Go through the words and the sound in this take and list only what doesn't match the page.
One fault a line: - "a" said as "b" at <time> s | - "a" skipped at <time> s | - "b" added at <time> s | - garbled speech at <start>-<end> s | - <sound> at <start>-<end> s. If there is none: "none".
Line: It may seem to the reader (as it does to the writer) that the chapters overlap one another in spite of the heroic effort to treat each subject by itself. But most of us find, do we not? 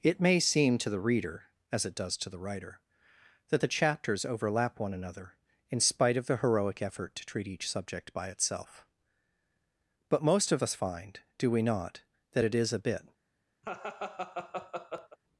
- "that it is a bit" added at 12.3 s
- laugh at 13.6-15.2 s